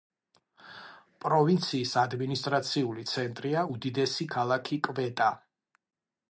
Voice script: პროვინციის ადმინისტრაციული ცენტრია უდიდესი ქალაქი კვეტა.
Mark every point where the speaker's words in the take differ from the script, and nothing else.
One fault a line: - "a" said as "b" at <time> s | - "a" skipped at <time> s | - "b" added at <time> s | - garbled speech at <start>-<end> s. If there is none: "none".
none